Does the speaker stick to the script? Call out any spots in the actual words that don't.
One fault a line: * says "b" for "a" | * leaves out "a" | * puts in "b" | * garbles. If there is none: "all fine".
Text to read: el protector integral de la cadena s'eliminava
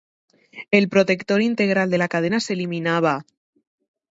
all fine